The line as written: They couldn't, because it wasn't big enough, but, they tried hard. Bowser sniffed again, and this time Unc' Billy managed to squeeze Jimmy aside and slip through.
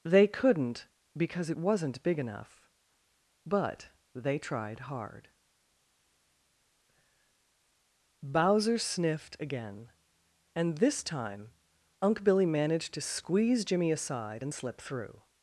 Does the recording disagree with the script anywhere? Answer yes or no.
no